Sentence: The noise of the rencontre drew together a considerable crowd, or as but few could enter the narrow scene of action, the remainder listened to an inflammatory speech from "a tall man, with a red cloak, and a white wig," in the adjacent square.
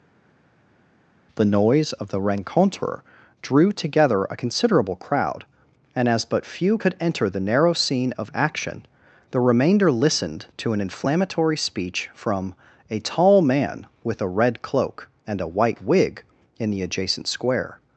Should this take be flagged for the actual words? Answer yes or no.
yes